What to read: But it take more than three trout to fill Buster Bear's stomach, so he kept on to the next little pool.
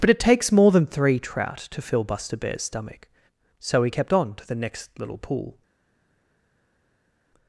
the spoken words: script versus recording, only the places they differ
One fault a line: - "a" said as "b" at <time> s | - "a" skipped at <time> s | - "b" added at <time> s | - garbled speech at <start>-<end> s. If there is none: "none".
- "take" said as "takes" at 0.2 s